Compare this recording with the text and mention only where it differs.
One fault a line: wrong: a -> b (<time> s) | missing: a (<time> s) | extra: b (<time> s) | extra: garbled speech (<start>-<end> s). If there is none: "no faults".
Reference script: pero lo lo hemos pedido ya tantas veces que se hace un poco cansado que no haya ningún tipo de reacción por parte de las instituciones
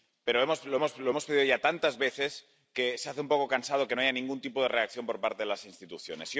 no faults